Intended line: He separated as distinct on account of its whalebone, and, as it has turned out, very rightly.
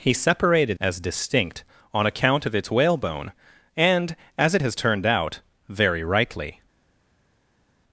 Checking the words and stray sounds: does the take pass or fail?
pass